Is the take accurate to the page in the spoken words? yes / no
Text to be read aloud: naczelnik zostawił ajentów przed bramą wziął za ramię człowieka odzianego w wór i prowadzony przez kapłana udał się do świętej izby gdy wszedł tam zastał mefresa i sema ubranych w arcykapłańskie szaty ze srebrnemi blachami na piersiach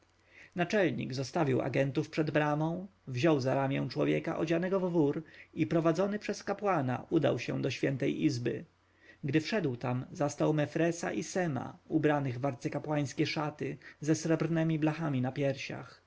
yes